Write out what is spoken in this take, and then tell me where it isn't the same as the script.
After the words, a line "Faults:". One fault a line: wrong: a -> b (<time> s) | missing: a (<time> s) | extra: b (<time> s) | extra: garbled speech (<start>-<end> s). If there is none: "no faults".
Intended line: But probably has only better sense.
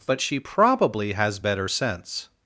But she probably has better sense.
Faults:
extra: she (0.2 s)
missing: only (1.4 s)